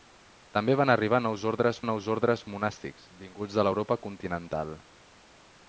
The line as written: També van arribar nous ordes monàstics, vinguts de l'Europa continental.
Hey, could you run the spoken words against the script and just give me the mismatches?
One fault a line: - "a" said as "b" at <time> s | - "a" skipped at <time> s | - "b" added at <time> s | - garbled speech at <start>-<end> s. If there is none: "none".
- "nous ordes" added at 1.9 s